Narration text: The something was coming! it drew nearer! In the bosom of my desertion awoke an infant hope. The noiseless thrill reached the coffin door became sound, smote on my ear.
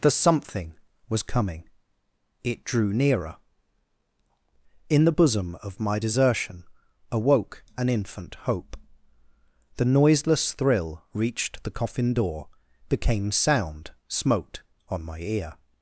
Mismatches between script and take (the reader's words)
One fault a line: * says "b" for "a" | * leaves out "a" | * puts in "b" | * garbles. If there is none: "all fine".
all fine